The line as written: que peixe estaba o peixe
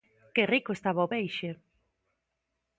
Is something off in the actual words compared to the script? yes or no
yes